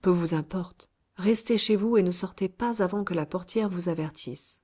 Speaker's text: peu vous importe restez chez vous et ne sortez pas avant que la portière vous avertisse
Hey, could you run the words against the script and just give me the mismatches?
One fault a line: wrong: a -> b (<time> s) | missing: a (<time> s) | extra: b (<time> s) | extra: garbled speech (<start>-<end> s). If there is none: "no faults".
no faults